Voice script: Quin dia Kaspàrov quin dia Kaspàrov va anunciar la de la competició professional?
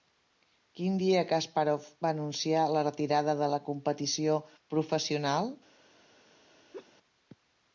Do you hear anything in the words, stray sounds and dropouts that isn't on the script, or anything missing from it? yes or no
yes